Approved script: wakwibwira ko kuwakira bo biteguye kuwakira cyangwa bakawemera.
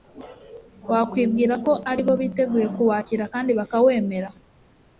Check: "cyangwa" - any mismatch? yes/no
yes